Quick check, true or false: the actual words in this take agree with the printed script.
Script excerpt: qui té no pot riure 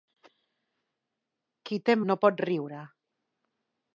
true